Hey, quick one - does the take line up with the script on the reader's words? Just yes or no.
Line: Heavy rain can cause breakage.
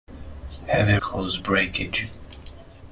no